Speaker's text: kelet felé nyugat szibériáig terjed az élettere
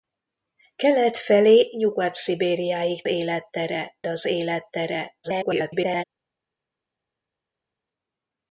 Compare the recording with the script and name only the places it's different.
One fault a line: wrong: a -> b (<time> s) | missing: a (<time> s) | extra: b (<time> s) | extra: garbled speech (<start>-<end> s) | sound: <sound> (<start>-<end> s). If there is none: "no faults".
wrong: terjed -> élettere (3.0 s)
extra: garbled speech (5.2-6.0 s)